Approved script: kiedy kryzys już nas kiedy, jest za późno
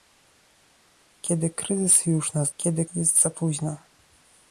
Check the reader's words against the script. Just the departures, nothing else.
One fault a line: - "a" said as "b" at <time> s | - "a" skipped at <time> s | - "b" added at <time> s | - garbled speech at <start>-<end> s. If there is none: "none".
none